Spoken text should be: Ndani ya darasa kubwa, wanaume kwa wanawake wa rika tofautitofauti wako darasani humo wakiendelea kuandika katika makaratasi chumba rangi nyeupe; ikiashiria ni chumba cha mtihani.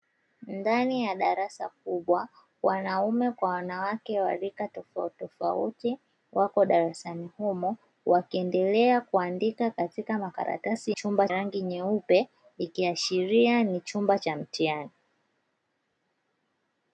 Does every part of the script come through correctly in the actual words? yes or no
yes